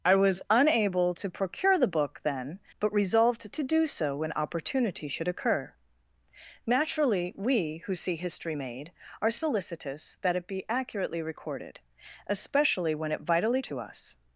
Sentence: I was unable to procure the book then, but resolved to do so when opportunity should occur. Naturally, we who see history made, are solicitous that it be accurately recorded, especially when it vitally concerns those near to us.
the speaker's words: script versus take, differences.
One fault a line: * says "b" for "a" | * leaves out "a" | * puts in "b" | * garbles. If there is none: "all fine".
* leaves out "concerns those near"